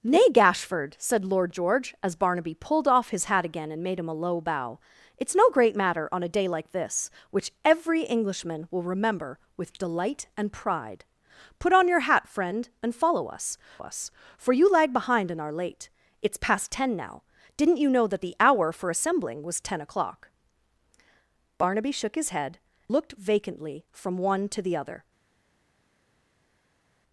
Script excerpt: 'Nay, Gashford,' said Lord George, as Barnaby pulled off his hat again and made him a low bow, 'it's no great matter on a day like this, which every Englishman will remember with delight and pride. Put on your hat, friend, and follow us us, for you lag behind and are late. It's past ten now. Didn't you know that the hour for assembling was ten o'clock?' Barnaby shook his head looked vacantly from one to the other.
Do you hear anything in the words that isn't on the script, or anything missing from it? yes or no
no